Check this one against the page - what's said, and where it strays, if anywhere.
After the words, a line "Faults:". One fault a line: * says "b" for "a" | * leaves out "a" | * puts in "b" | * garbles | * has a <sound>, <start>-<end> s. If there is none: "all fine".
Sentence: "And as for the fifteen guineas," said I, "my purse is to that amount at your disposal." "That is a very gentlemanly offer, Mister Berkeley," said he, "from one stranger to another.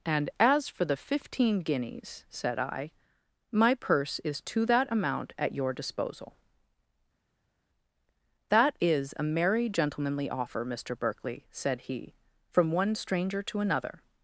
"And as for the fifteen guineas," said I, "my purse is to that amount at your disposal." "That is a merry gentlemanly offer, Mister Berkeley," said he, "from one stranger to another.
Faults:
* says "merry" for "very"